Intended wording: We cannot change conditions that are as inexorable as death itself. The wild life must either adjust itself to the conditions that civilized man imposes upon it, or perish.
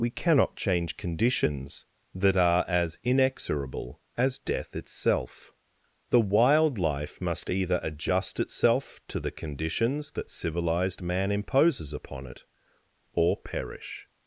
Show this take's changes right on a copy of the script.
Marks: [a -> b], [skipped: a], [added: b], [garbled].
We cannot change conditions that are as inexorable as death itself. The wild life must either adjust itself to the conditions that civilized man imposes upon it, or perish.